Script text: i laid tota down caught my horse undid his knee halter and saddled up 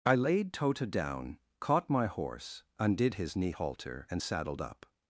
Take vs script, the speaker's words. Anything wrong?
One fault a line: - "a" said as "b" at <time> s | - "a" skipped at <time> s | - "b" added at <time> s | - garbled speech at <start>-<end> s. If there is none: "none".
none